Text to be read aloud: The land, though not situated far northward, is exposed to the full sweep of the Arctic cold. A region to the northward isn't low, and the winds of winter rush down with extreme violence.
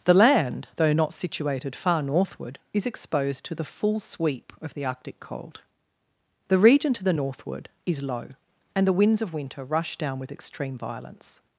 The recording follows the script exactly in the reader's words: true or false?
false